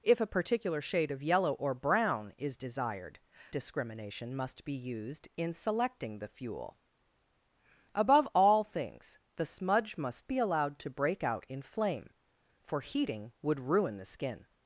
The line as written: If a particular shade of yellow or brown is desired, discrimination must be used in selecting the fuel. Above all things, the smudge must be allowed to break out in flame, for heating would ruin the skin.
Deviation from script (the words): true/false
false